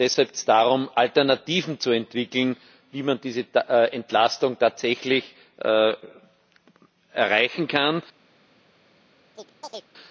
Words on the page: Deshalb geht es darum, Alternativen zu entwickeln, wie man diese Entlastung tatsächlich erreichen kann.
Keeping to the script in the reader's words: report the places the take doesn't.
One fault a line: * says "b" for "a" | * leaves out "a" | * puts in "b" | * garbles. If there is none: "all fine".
* leaves out "geht"